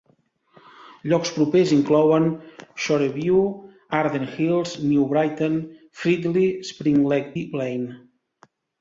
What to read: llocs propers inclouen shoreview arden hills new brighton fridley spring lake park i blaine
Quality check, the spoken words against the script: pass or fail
fail